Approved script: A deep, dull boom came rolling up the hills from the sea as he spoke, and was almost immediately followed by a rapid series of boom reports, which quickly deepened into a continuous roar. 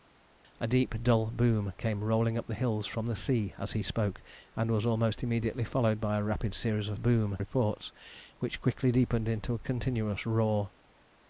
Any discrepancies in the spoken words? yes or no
no